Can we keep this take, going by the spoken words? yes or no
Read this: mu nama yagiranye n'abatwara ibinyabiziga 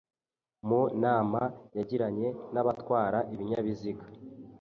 yes